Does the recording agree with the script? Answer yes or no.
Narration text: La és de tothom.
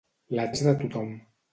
yes